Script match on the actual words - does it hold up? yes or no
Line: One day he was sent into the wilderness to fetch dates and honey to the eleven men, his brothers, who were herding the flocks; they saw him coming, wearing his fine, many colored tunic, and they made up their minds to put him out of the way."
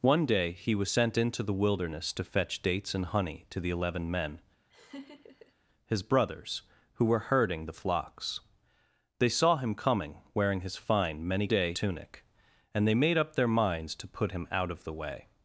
no